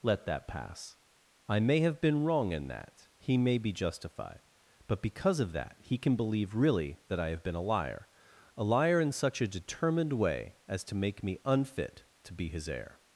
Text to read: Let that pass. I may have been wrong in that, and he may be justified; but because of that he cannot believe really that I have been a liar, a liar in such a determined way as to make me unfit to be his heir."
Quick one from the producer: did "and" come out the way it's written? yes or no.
no